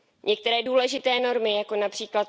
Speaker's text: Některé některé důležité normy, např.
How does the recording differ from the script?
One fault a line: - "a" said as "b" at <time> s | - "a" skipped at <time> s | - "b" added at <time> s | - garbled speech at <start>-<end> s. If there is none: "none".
- "některé" skipped at 0.6 s
- "jako" added at 1.6 s